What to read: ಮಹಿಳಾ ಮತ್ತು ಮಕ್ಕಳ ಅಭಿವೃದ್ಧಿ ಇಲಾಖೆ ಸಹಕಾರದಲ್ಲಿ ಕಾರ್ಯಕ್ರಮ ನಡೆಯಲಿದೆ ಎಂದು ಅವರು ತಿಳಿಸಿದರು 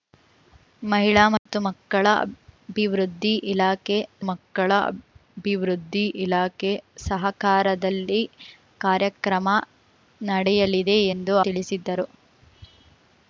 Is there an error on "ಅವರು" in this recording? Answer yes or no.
yes